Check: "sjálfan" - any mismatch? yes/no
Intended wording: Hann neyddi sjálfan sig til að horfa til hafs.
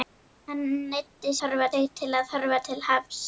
yes